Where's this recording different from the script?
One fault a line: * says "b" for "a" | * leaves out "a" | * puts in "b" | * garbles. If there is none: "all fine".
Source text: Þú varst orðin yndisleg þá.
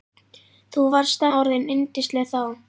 all fine